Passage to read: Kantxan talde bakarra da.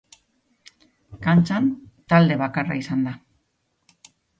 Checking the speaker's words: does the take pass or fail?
fail